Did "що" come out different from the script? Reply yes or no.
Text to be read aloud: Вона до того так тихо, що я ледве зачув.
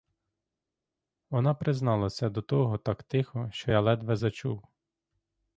no